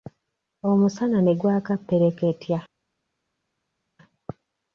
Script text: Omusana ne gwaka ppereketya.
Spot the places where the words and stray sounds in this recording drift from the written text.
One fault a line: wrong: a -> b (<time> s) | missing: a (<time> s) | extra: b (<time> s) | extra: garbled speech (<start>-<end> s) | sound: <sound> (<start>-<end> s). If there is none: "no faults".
no faults